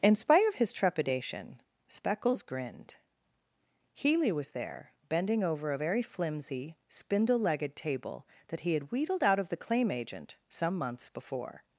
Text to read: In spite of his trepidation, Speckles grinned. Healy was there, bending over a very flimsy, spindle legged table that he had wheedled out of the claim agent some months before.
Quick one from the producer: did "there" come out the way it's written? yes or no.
yes